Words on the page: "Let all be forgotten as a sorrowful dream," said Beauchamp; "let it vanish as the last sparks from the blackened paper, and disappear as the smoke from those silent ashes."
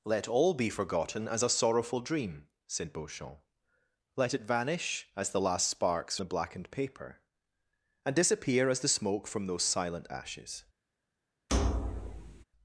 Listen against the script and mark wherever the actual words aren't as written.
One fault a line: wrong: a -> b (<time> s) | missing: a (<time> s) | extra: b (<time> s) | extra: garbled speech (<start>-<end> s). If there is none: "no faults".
missing: from (6.2 s)